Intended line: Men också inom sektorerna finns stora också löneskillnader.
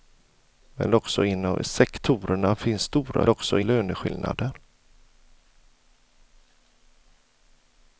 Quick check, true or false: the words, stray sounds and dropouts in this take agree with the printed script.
true